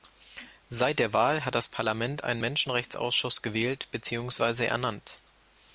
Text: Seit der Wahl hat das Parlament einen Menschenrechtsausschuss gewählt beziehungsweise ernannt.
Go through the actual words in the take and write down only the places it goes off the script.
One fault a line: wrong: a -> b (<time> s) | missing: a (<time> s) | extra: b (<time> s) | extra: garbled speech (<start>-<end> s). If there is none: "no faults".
no faults